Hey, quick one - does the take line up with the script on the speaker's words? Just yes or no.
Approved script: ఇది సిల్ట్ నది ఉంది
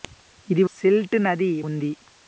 yes